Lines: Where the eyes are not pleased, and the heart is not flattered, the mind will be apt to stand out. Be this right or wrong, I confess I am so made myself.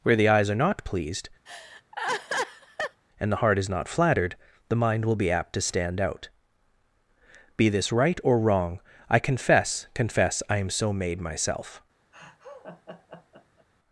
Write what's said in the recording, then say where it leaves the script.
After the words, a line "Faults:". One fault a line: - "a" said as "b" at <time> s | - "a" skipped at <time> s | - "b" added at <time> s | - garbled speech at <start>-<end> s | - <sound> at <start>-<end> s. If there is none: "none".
Where the eyes are not pleased, and the heart is not flattered, the mind will be apt to stand out. Be this right or wrong, I confess confess I am so made myself.
Faults:
- laugh at 1.5-3.0 s
- "confess" added at 9.9 s
- laugh at 12.1-13.7 s